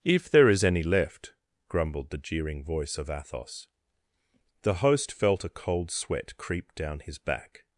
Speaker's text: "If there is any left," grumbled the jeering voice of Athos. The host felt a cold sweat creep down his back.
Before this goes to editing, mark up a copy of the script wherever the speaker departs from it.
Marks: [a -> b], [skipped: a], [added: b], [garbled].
"If there is any left," grumbled the jeering voice of Athos. The host felt a cold sweat creep down his back.